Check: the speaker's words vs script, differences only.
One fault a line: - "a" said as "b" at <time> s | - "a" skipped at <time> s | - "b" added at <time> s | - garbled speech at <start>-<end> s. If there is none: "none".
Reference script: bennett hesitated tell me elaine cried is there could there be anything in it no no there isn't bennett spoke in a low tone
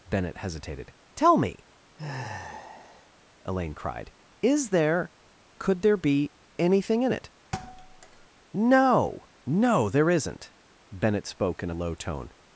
none